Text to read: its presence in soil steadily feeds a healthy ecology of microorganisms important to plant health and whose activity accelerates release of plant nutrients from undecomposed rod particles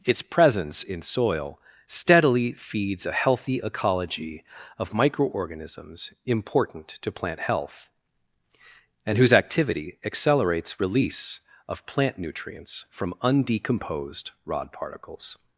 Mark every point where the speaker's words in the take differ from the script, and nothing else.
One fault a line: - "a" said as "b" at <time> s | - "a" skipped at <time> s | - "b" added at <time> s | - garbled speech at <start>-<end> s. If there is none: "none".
none